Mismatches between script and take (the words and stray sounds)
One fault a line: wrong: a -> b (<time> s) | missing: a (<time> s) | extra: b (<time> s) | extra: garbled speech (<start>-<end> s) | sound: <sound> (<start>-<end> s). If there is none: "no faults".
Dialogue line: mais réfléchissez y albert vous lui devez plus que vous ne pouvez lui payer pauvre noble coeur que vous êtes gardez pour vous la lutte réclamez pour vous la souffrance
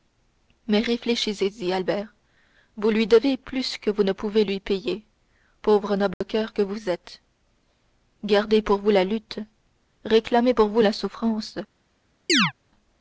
sound: dropout (6.1-6.2 s)
sound: chirp (12.3-12.5 s)